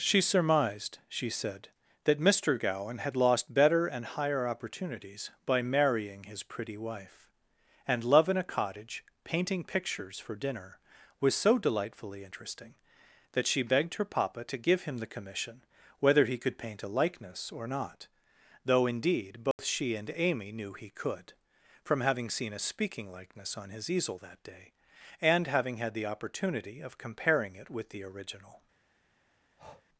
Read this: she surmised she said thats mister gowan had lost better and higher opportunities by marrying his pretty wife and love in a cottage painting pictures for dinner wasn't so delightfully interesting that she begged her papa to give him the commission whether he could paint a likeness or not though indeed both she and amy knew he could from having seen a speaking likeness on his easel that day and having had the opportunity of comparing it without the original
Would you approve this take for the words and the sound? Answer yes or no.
no